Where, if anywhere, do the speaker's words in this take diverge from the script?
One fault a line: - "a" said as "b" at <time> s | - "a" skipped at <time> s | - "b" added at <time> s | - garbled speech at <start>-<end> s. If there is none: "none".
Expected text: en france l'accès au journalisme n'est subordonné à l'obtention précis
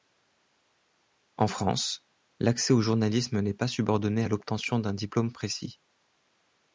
- "pas" added at 3.5 s
- "d'un diplôme" added at 4.8 s